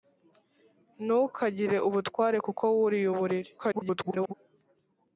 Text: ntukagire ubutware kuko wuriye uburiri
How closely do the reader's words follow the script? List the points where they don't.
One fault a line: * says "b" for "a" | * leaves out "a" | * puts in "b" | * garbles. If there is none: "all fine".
* garbles